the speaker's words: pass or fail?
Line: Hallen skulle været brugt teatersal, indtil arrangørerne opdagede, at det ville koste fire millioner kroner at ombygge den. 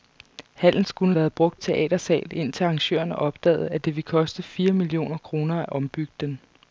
pass